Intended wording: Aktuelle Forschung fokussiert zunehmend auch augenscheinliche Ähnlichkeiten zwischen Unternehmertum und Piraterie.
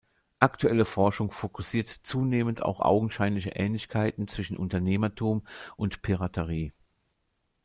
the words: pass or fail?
pass